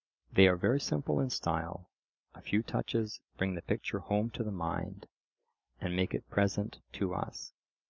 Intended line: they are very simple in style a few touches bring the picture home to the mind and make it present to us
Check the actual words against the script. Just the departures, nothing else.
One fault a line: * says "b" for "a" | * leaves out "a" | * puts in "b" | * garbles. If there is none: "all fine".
all fine